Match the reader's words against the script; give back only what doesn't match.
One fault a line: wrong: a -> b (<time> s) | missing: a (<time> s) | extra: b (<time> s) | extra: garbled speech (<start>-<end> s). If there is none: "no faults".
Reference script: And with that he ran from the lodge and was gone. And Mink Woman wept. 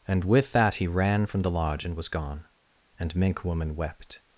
no faults